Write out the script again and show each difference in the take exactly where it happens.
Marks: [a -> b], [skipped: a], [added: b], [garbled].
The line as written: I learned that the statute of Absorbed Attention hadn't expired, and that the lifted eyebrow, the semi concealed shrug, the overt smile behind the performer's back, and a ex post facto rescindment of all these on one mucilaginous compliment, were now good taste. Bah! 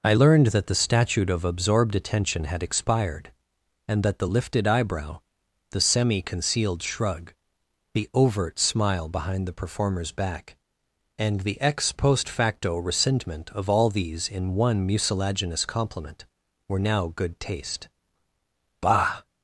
I learned that the statute of Absorbed Attention [hadn't -> had] expired, and that the lifted eyebrow, the semi concealed shrug, the overt smile behind the performer's back, and [a -> the] ex post facto rescindment of all these [on -> in] one mucilaginous compliment, were now good taste. Bah!